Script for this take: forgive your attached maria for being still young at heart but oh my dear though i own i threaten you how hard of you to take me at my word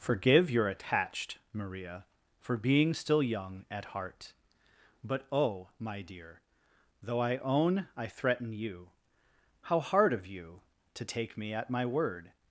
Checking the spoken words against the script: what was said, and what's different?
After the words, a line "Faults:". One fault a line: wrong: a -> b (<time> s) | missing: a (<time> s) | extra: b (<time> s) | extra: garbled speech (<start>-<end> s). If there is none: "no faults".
forgive your attached maria for being still young at heart but oh my dear though i own i threaten you how hard of you to take me at my word
Faults:
no faults